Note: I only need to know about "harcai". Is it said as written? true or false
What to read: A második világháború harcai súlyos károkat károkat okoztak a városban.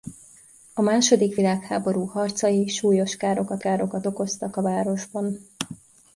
true